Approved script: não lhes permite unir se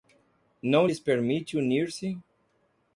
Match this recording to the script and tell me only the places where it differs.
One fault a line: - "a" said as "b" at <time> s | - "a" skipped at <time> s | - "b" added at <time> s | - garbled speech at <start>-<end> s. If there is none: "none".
none